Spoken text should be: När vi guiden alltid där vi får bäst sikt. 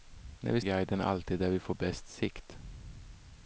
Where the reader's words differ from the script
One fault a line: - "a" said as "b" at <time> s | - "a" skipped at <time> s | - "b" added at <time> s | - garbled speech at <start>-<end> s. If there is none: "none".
none